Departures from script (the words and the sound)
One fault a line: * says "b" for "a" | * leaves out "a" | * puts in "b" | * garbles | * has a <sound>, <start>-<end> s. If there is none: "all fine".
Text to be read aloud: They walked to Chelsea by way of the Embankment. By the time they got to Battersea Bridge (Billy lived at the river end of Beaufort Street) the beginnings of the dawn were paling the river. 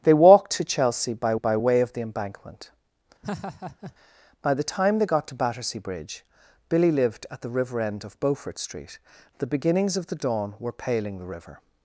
* puts in "by"
* has a laugh, 3.2-3.9 s